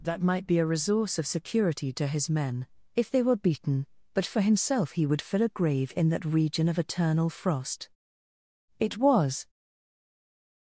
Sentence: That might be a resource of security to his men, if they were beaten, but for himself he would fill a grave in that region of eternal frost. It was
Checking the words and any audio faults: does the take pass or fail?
pass